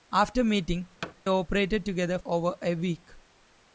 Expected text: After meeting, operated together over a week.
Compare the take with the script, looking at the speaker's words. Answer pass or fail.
pass